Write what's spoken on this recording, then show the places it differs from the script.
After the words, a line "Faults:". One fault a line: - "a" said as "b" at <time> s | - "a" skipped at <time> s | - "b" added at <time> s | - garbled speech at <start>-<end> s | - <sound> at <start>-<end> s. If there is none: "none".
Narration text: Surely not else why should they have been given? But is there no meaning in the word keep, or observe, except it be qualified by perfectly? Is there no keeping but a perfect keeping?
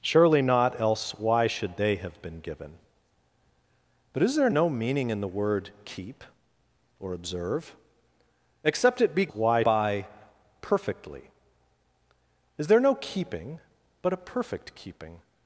Surely not else why should they have been given? But is there no meaning in the word keep, or observe, except it be why by perfectly? Is there no keeping but a perfect keeping?
Faults:
- "qualified" said as "why" at 9.3 s